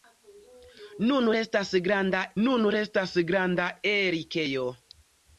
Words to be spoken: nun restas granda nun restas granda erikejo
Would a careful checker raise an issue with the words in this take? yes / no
no